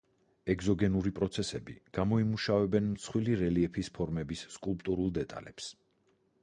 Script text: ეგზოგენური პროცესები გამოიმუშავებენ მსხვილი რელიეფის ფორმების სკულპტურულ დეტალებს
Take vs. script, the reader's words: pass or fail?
pass